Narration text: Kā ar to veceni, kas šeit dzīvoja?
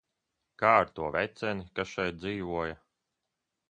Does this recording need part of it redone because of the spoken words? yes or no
no